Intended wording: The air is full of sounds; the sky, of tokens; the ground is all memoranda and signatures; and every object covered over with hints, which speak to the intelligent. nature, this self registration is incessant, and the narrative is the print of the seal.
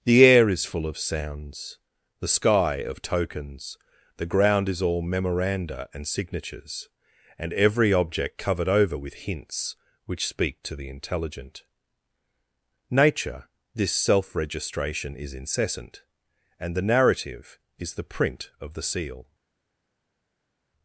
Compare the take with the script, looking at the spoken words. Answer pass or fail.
pass